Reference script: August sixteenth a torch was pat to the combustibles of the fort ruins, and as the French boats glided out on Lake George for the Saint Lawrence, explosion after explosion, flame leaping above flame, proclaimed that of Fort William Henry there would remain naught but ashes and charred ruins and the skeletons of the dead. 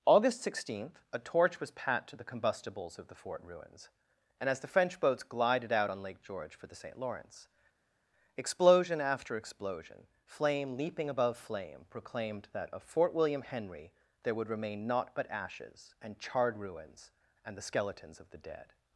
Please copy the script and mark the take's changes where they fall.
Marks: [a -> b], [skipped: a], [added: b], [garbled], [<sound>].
August sixteenth a torch was pat to the combustibles of the fort ruins, and as the French boats glided out on Lake George for the Saint Lawrence, explosion after explosion, flame leaping above flame, proclaimed that of Fort William Henry there would remain naught but ashes and charred ruins and the skeletons of the dead.